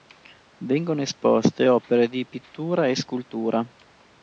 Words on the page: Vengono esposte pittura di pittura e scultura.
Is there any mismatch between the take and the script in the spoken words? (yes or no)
yes